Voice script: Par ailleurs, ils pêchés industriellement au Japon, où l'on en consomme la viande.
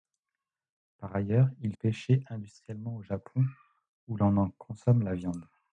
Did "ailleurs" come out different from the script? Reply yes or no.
no